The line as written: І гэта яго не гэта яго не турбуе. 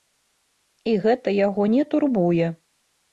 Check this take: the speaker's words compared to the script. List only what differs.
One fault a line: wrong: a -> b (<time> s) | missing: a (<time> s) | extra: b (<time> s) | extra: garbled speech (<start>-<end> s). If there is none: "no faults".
missing: гэта яго не (1.8 s)